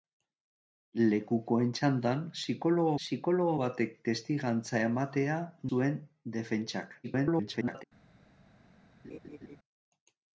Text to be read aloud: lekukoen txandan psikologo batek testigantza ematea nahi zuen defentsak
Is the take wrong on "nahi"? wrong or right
wrong